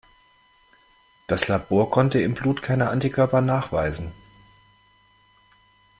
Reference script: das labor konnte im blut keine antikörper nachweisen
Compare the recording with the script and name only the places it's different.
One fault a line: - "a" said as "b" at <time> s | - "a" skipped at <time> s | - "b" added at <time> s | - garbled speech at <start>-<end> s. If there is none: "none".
none